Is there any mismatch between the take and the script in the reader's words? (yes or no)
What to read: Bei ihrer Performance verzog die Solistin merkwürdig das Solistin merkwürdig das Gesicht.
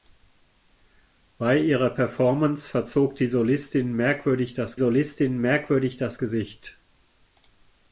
no